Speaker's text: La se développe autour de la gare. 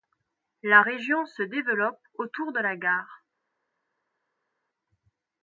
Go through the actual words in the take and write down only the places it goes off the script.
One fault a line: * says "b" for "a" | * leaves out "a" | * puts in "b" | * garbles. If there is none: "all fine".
* puts in "région"